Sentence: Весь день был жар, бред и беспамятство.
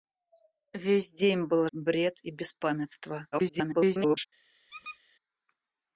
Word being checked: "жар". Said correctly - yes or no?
no